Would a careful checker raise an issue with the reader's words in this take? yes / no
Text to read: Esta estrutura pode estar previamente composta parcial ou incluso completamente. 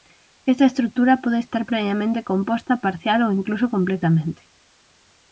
no